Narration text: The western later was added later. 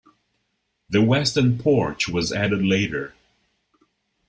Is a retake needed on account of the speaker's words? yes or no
yes